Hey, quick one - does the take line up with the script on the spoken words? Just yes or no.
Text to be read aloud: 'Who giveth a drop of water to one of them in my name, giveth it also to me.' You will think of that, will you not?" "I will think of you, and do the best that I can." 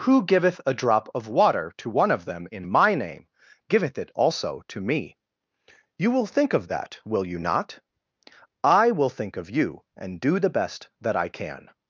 yes